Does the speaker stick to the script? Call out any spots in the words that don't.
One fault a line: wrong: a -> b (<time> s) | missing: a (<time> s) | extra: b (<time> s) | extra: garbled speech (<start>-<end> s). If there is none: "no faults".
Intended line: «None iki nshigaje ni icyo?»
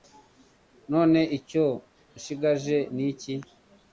wrong: iki -> icyo (1.4 s)
wrong: icyo -> iki (3.1 s)